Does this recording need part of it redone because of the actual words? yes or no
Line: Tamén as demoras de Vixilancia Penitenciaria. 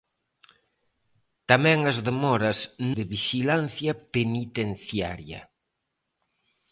no